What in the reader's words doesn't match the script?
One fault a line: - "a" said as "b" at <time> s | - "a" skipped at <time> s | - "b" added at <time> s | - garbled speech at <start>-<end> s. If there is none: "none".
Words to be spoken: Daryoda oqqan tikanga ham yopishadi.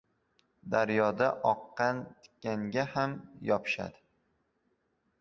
none